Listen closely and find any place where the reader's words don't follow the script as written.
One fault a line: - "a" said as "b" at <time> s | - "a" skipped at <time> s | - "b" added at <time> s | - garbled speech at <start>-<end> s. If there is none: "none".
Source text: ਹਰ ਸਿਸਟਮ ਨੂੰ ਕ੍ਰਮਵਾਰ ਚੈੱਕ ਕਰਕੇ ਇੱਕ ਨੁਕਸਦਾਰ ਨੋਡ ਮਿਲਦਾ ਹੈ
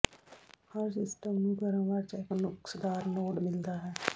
- "ਕਰਕੇ ਇੱਕ" skipped at 2.2 s